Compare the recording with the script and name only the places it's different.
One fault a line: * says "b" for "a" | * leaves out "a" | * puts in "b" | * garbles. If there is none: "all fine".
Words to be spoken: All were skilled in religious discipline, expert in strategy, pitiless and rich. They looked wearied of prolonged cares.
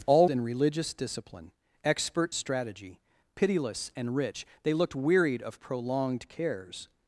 * leaves out "were skilled"
* leaves out "in"